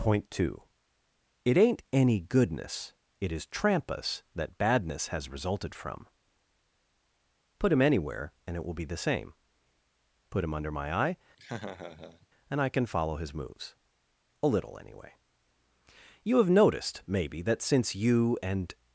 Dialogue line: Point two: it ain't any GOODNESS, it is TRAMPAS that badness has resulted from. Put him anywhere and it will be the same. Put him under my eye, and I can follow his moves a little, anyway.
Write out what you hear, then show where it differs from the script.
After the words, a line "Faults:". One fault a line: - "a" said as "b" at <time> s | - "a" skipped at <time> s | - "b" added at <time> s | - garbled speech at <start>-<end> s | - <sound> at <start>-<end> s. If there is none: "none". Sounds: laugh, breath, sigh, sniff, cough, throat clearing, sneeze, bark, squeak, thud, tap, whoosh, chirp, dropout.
Point two: it ain't any GOODNESS, it is TRAMPAS that badness has resulted from. Put him anywhere and it will be the same. Put him under my eye, and I can follow his moves a little, anyway. You have noticed, maybe, that since you and
Faults:
- laugh at 11.4-12.3 s
- "You have noticed maybe that since you and" added at 16.2 s